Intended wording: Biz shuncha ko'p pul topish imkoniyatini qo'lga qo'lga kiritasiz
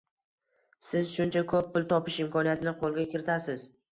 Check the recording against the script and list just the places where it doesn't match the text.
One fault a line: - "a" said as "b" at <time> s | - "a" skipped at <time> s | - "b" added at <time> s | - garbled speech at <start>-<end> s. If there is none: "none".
- "Biz" said as "Siz" at 0.9 s
- "qo'lga" skipped at 3.1 s